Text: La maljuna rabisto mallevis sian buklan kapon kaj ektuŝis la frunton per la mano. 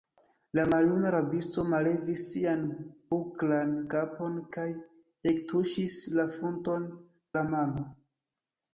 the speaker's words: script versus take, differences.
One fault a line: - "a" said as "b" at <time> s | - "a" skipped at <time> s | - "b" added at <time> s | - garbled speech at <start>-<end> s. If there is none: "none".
- "per" skipped at 6.9 s